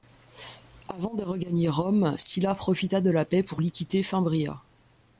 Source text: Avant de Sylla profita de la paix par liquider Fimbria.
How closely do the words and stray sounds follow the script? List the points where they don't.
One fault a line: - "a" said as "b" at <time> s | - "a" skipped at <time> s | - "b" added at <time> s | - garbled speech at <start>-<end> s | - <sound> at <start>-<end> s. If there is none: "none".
- "regagner Rome" added at 1.2 s
- "par" said as "pour" at 3.4 s